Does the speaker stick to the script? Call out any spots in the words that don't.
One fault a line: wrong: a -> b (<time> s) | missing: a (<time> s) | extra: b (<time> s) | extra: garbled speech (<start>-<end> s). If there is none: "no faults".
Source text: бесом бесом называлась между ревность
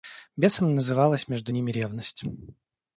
missing: бесом (0.7 s)
extra: ними (1.5 s)